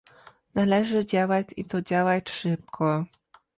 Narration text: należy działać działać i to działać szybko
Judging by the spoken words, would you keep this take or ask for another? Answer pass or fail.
fail